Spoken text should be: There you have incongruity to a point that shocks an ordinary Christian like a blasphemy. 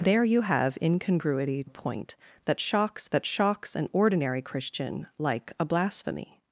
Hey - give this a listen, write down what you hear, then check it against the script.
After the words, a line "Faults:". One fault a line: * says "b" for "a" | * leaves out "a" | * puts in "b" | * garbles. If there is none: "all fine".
There you have incongruity a point that shocks that shocks an ordinary Christian like a blasphemy.
Faults:
* leaves out "to"
* puts in "that shocks"